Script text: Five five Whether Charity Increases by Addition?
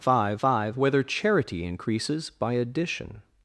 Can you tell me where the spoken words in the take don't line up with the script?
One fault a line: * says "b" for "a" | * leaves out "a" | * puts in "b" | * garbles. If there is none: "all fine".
all fine